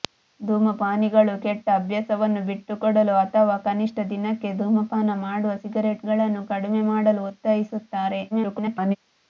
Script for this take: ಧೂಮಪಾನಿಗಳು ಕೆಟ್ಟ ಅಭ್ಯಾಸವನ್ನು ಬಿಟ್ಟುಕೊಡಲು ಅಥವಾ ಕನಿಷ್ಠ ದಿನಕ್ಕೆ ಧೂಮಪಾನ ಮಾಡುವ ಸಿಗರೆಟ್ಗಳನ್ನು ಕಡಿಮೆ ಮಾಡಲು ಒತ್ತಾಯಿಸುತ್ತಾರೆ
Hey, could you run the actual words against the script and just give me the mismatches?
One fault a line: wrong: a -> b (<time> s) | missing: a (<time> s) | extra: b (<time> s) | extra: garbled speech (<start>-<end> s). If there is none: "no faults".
extra: garbled speech (8.3-9.0 s)